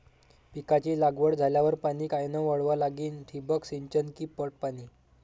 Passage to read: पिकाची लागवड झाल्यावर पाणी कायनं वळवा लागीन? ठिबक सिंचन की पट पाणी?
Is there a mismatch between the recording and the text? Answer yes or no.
no